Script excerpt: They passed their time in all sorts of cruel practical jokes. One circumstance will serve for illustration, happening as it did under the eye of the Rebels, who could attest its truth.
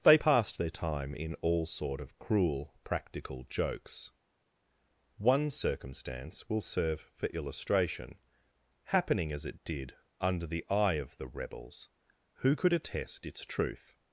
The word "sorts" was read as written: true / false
false